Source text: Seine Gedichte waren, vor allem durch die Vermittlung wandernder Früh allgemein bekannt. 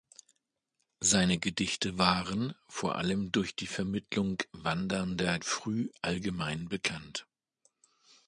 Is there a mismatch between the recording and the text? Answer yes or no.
no